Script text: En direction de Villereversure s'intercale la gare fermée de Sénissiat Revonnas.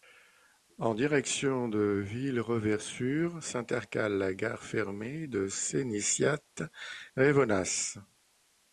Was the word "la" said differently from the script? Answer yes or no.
no